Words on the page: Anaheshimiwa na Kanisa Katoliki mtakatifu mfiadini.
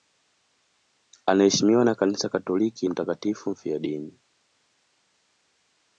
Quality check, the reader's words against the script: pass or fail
pass